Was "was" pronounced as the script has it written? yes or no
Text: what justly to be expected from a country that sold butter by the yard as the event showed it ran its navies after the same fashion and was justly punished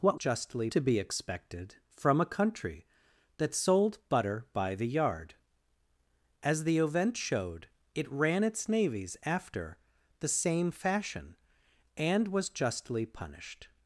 yes